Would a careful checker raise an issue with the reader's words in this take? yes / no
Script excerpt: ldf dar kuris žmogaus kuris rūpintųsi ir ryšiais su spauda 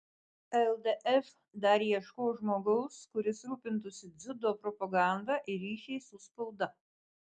yes